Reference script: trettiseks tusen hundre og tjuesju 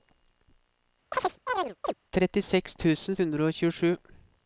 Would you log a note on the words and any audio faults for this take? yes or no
yes